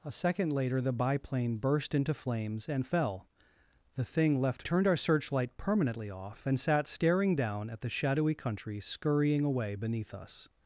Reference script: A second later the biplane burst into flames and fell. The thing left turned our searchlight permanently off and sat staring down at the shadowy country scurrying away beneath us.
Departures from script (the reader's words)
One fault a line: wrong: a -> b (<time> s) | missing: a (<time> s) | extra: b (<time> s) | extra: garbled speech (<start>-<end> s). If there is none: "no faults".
no faults